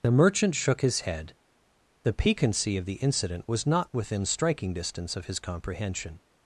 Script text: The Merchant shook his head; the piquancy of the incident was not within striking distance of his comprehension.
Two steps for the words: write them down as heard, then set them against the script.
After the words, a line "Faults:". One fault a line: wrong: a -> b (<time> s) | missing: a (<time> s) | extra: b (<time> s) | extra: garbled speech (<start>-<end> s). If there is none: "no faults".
The Merchant shook his head; the piquancy of the incident was not within striking distance of his comprehension.
Faults:
no faults